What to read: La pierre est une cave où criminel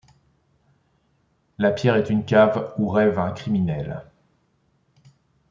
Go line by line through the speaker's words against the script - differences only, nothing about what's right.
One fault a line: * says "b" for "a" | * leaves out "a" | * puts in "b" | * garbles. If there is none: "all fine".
* puts in "rêve un"